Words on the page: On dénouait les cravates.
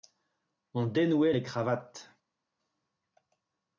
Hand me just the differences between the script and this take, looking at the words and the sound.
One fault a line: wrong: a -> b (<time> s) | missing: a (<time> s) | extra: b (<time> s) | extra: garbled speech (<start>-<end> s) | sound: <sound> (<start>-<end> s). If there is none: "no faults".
no faults